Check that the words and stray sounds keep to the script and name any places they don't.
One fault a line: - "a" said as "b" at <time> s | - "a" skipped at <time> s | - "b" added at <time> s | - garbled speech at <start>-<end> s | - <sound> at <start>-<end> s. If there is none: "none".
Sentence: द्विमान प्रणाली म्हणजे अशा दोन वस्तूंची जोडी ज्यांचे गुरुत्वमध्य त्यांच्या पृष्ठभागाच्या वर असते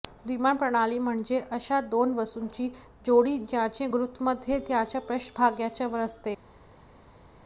none